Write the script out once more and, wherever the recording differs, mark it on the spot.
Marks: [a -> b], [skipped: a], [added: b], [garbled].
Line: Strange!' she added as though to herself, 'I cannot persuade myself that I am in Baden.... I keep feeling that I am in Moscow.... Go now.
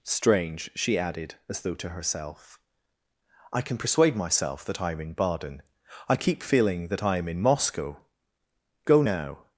Strange!' she added as though to herself, 'I [cannot -> can] persuade myself that I am in Baden.... I keep feeling that I am in Moscow.... Go now.